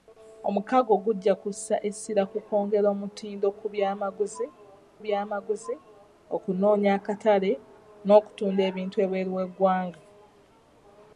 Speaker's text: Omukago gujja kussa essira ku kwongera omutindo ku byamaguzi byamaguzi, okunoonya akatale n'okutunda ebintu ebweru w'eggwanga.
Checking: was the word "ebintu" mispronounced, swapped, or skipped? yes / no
no